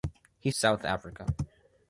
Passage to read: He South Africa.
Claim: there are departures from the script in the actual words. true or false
false